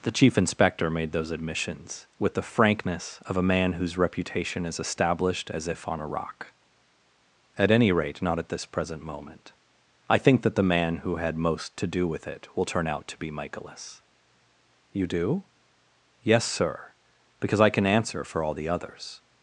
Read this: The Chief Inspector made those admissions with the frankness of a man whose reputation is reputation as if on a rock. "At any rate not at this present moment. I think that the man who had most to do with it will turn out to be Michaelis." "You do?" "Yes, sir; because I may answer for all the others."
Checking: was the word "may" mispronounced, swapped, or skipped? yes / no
yes